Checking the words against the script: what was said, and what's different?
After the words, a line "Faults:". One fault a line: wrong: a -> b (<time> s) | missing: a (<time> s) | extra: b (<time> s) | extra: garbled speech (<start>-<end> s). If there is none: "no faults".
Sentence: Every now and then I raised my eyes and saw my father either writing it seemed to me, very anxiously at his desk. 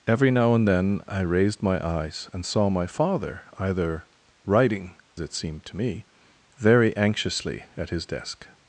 Every now and then I raised my eyes and saw my father either writing it seemed to me, very anxiously at his desk.
Faults:
no faults